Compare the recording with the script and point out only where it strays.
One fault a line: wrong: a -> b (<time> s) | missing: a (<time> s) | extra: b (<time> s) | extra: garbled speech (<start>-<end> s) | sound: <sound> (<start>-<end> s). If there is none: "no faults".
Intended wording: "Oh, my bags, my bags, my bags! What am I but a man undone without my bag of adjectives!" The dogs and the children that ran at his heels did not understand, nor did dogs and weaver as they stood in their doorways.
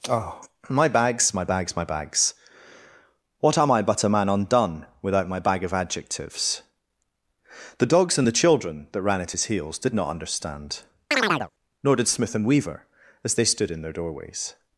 sound: chirp (11.1-11.5 s)
wrong: dogs -> smith (12.1 s)